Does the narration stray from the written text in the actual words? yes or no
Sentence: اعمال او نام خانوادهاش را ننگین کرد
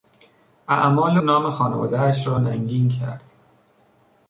yes